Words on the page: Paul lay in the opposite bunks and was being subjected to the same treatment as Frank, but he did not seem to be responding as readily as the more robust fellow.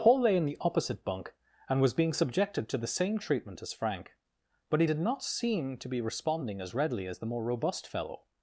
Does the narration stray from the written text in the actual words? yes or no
yes